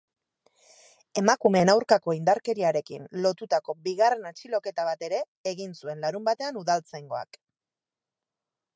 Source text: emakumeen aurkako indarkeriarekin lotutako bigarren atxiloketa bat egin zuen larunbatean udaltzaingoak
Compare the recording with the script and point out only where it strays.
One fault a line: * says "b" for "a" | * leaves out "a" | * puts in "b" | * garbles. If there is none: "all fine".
* puts in "ere"